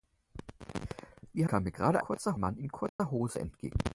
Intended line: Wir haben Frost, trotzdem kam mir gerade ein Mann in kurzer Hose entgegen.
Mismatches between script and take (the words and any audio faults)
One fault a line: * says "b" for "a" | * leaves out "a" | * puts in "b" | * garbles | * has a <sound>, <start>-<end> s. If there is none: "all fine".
* leaves out "haben Frost trotzdem"
* says "kurzer" for "ein"
* has a dropout, 2.9-3.0 s